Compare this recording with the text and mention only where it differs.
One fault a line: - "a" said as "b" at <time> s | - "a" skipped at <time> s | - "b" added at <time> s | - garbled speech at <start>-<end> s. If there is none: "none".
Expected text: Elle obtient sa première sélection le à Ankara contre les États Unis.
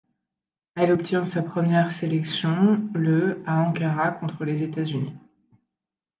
none